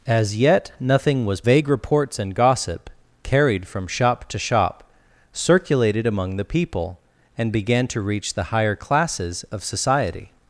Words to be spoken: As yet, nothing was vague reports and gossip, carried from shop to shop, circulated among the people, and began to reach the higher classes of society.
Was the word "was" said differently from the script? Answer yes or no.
no